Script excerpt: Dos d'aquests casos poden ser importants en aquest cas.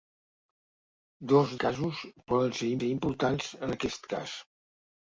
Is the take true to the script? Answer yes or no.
no